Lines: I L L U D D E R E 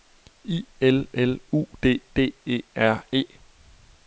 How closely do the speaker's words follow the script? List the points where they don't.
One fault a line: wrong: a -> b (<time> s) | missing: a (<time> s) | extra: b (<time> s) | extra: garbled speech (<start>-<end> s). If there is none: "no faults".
no faults